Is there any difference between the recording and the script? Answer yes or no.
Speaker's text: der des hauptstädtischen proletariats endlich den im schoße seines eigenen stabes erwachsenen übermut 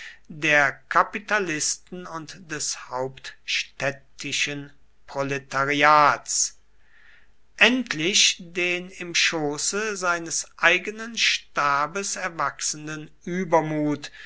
yes